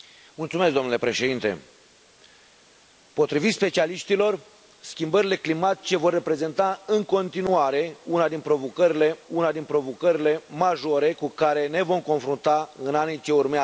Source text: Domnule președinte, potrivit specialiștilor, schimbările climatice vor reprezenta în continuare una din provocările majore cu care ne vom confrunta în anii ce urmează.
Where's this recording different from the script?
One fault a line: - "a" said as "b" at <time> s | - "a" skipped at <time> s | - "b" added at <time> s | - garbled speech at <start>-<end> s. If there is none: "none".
- "una din provocările" added at 9.3 s